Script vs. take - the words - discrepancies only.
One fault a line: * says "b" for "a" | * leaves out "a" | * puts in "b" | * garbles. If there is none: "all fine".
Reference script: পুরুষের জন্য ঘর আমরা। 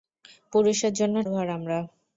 all fine